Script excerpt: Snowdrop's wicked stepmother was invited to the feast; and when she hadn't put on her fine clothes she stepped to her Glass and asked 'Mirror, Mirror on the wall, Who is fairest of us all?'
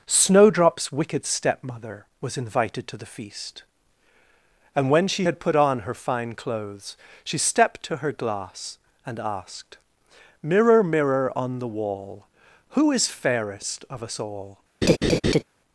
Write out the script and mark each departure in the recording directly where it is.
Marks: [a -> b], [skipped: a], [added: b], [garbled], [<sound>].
Snowdrop's wicked stepmother was invited to the feast; and when she [hadn't -> had] put on her fine clothes she stepped to her Glass and asked 'Mirror, Mirror on the wall, Who is fairest of us all?' [laugh]